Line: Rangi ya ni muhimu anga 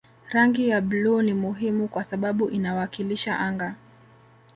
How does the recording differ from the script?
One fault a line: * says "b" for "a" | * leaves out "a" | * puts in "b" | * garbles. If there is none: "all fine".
* puts in "bluu"
* puts in "kwa sababu inawakilisha"